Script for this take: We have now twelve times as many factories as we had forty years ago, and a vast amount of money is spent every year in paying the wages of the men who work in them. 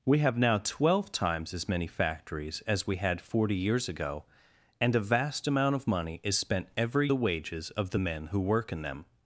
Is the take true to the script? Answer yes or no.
no